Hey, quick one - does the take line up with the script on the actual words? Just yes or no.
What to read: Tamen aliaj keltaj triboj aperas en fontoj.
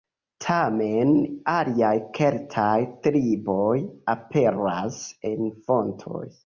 yes